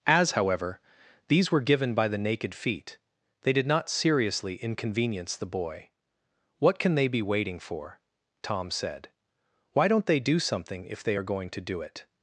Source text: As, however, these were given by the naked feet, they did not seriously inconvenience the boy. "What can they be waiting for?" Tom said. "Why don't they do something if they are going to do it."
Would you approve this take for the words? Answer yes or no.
yes